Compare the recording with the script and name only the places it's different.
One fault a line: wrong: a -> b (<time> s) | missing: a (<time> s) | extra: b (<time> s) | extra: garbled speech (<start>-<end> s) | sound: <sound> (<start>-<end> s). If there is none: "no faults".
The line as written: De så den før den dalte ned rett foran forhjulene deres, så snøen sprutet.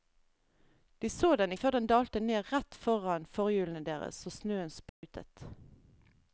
sound: dropout (4.9-5.0 s)